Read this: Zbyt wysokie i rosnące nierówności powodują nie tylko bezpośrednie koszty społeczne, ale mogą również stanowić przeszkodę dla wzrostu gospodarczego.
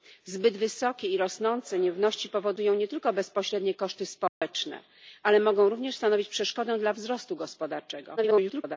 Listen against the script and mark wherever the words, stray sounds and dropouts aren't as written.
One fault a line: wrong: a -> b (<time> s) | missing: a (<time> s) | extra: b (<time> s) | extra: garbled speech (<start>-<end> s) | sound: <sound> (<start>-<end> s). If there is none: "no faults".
sound: dropout (4.3-4.4 s)
extra: garbled speech (8.2-8.8 s)